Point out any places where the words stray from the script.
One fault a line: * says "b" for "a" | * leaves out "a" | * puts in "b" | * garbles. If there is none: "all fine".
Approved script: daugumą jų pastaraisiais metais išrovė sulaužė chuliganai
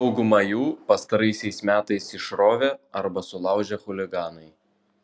* puts in "arba"